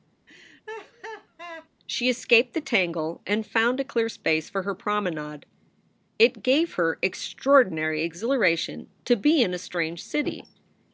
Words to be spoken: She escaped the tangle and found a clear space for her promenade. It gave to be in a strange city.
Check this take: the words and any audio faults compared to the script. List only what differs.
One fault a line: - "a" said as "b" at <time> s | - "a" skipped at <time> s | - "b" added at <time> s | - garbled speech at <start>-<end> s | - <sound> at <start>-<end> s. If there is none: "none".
- laugh at 0.3-1.7 s
- "her extraordinary exhilaration" added at 6.7 s